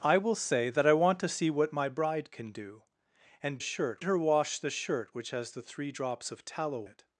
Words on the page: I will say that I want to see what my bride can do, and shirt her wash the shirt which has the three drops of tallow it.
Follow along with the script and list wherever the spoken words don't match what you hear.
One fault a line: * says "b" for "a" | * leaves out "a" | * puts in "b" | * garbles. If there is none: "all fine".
all fine